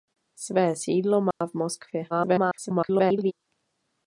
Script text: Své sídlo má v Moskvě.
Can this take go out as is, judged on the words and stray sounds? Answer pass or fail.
fail